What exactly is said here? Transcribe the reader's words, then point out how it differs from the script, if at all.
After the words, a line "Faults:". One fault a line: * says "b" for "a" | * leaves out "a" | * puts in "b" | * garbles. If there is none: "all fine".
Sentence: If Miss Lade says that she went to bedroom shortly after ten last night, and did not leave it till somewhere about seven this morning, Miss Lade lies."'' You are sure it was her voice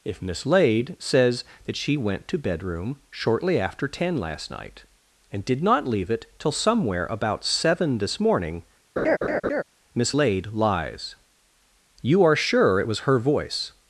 If Miss Lade says that she went to bedroom shortly after ten last night, and did not leave it till somewhere about seven this morning, Miss Lade lies."'' You are sure it was her voice
Faults:
all fine